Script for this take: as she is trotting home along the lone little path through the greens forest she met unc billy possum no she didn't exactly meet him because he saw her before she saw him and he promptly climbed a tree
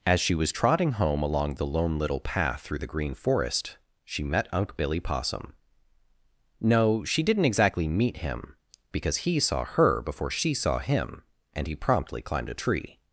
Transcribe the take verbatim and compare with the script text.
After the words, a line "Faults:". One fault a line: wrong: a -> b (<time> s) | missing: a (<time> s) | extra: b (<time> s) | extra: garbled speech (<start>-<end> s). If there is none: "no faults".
as she was trotting home along the lone little path through the green forest she met unc billy possum no she didn't exactly meet him because he saw her before she saw him and he promptly climbed a tree
Faults:
wrong: is -> was (0.3 s)
wrong: greens -> green (2.9 s)